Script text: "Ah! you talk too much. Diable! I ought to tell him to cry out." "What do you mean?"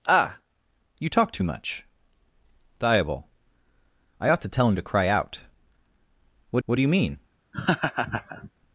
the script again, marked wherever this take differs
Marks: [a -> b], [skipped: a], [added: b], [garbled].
"Ah! you talk too much. Diable! I ought to tell him to cry out." "What [added: what] do you mean?"